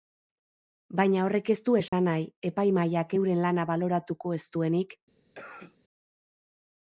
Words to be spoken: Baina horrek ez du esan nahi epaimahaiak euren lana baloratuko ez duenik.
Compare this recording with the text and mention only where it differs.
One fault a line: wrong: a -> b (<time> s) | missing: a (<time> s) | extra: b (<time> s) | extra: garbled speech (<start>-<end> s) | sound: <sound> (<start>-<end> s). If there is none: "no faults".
sound: dropout (1.9-1.9 s)
sound: cough (5.3-5.8 s)